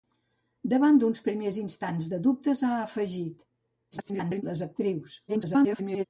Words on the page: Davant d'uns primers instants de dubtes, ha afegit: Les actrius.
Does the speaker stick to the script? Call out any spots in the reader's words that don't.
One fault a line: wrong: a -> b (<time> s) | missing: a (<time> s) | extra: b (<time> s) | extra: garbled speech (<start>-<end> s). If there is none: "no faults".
extra: garbled speech (3.9-4.4 s)
extra: garbled speech (5.3-6.1 s)